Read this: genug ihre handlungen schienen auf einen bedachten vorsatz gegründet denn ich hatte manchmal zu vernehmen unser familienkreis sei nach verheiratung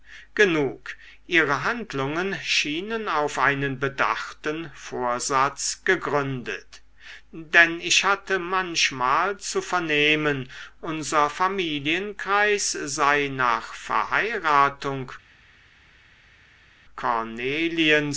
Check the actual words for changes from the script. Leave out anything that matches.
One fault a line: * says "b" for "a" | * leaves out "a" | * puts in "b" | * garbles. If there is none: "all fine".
all fine